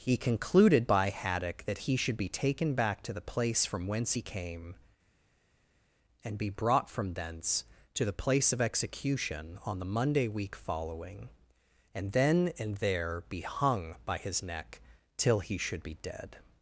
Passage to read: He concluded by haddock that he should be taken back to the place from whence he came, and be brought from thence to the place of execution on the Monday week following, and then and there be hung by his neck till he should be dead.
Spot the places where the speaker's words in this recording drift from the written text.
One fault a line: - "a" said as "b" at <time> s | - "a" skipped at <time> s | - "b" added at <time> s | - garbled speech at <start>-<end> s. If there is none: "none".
none